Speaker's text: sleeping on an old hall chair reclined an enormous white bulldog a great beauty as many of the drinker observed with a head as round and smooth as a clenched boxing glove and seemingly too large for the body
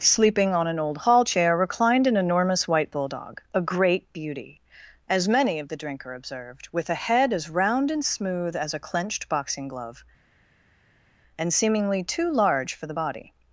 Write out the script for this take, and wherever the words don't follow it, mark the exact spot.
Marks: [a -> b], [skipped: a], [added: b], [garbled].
sleeping on an old hall chair reclined an enormous white bulldog a great beauty as many of the drinker observed with a head as round and smooth as a clenched boxing glove and seemingly too large for the body